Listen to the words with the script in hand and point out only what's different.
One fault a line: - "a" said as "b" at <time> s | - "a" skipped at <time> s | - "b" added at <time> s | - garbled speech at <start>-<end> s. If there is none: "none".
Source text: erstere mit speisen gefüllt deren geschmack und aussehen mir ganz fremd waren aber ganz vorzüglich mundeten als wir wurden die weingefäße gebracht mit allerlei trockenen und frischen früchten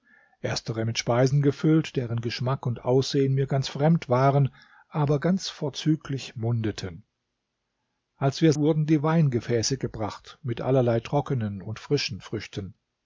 none